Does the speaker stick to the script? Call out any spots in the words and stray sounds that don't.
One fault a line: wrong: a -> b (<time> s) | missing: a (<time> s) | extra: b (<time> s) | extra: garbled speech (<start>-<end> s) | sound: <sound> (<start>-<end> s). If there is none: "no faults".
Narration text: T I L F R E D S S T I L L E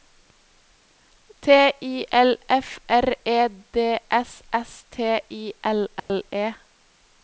sound: dropout (6.0-6.1 s)